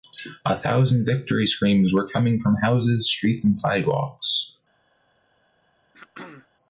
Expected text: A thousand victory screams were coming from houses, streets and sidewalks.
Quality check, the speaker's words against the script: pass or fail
pass